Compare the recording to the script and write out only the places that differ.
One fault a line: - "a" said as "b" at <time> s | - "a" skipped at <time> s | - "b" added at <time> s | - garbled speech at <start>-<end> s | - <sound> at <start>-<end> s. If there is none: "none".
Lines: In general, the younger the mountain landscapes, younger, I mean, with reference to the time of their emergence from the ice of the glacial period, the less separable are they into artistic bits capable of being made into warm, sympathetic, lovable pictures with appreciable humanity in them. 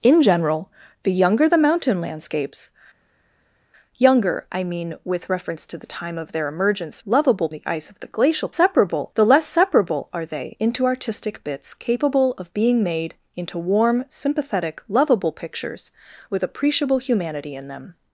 - "from" said as "lovable" at 7.0 s
- "period" said as "separable" at 8.5 s